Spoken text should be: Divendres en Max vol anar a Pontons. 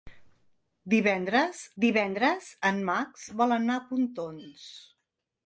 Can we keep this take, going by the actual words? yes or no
no